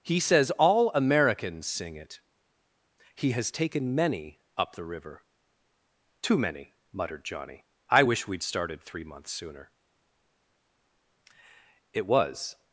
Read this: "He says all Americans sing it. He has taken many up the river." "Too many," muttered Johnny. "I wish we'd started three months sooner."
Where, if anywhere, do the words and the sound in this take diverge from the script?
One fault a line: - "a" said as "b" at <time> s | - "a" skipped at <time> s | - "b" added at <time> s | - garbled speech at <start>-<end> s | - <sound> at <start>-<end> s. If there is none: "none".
- "It was" added at 11.9 s